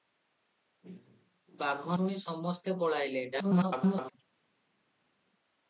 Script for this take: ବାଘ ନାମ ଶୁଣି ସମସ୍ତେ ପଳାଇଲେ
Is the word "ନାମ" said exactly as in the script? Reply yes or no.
no